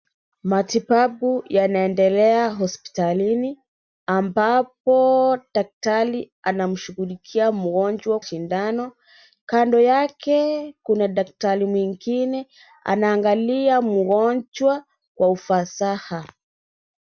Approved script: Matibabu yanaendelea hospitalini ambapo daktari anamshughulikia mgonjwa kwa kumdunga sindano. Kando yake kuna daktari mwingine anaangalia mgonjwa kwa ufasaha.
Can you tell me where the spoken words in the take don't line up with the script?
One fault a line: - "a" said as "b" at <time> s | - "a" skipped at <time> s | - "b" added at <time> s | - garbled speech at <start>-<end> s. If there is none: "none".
- "kwa kumdunga" skipped at 8.2 s